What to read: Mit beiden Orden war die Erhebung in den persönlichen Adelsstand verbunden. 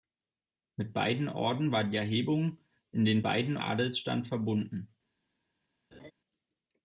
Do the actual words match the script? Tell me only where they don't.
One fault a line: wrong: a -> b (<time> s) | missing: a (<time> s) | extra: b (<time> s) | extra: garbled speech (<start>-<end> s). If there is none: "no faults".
wrong: persönlichen -> beiden (3.2 s)